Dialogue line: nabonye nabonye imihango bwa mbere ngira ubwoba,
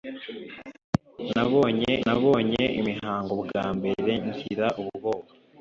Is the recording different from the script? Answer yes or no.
no